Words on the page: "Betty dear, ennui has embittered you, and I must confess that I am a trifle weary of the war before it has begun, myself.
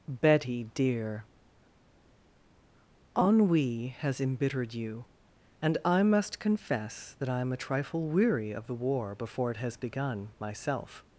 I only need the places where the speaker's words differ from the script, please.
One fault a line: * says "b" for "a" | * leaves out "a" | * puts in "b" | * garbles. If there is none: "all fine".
all fine